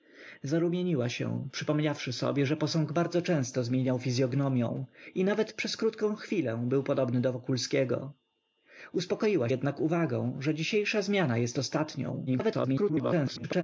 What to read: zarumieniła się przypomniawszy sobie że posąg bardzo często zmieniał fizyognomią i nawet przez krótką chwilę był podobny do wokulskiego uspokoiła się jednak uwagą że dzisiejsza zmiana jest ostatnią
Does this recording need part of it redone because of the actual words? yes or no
yes